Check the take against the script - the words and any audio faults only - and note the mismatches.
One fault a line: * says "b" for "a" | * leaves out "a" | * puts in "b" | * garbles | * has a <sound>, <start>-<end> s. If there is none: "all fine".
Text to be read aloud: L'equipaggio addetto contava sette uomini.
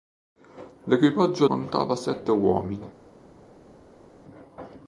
* leaves out "addetto"